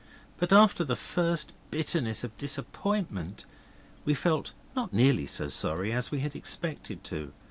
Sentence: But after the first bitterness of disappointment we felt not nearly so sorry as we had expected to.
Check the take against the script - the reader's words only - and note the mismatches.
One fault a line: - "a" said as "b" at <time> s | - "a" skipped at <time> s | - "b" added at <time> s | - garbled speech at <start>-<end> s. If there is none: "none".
none